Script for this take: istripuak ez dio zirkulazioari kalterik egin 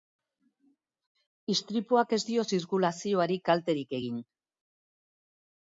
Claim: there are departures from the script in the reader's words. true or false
false